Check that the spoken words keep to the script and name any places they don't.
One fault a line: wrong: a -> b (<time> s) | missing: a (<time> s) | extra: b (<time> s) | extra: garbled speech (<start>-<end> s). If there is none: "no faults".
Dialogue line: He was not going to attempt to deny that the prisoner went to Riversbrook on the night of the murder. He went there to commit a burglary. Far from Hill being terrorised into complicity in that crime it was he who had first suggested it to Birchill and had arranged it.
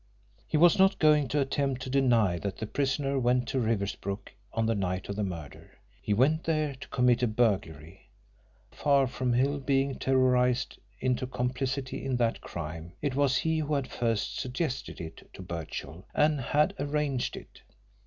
no faults